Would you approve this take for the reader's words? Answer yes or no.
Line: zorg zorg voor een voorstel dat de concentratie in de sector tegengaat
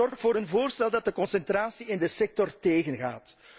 yes